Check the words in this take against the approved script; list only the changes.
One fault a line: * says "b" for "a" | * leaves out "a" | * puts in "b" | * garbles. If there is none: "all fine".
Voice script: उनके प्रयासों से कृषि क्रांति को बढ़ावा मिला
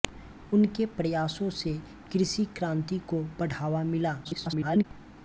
* garbles